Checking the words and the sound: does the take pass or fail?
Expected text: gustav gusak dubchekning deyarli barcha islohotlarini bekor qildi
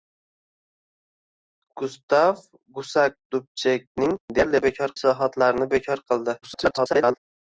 fail